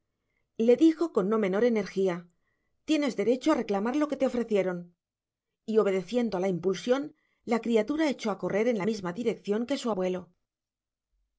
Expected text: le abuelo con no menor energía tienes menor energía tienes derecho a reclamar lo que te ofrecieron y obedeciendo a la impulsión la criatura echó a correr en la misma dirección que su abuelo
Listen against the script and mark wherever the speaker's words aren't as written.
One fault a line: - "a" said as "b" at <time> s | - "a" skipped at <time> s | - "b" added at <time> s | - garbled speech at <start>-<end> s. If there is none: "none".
- "abuelo" said as "dijo" at 0.8 s
- "menor energía tienes" skipped at 3.1 s